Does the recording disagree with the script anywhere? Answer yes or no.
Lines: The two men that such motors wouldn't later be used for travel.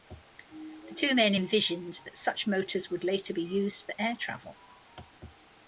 yes